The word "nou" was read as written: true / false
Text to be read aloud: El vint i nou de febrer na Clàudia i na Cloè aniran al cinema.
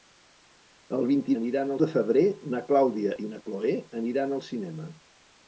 false